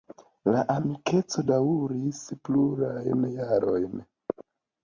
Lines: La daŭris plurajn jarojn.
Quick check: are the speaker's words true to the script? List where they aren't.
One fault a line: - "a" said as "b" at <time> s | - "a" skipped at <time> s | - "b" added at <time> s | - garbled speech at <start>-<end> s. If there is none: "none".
- "amikeco" added at 0.8 s